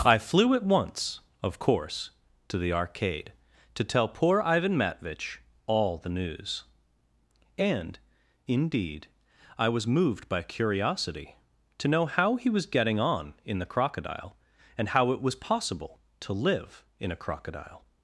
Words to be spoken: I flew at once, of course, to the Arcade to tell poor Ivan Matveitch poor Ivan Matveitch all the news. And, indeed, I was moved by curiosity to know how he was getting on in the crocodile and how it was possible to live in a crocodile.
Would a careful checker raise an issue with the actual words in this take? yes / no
yes